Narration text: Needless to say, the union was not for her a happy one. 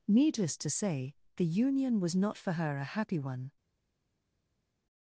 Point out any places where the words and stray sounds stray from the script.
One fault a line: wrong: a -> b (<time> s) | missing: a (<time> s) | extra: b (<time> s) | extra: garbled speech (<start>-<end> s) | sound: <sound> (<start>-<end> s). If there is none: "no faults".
no faults